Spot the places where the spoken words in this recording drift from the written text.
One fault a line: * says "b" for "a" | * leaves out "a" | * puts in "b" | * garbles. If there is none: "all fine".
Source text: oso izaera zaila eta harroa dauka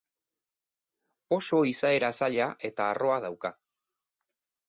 all fine